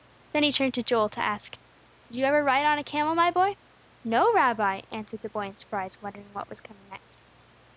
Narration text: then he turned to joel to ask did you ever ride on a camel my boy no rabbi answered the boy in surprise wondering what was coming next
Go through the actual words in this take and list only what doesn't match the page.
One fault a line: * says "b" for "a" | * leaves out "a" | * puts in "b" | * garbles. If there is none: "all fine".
all fine